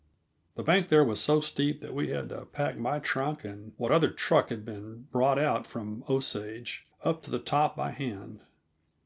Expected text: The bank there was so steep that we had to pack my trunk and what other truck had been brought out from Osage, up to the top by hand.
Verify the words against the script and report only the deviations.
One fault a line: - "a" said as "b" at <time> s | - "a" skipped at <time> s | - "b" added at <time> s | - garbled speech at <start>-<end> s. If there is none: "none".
none